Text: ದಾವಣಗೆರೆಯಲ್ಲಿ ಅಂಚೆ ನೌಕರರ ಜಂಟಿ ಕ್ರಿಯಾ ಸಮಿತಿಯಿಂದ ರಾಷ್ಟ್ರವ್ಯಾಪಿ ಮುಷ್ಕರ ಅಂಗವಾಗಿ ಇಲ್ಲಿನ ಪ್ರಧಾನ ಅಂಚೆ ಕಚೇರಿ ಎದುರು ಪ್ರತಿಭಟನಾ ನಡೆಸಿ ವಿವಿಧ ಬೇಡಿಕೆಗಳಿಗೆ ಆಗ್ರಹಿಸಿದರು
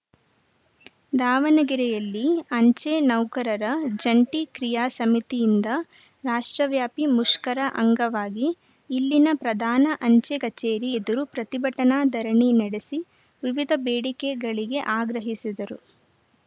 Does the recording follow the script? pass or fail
fail